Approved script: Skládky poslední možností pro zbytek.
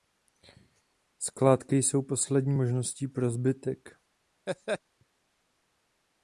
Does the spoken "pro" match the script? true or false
true